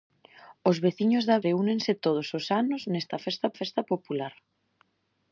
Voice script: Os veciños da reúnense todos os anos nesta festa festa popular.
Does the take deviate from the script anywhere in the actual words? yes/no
no